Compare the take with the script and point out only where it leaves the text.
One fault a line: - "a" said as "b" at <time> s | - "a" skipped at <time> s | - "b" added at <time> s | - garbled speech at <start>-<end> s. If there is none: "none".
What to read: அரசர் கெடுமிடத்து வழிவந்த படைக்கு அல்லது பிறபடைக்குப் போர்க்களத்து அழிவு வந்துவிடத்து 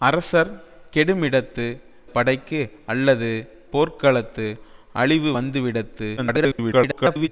- "வழிவந்த" skipped at 1.6 s
- "பிறபடைக்குப்" skipped at 3.3 s
- garbled speech at 6.2-7.3 s